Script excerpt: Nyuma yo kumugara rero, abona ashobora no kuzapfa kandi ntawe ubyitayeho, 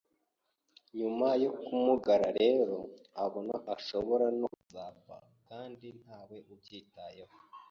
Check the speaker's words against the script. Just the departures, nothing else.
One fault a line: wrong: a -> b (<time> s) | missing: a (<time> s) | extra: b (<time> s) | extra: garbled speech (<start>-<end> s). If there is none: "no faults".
no faults